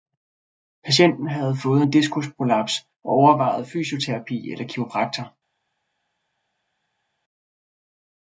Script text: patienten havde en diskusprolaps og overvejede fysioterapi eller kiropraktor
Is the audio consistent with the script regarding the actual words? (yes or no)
no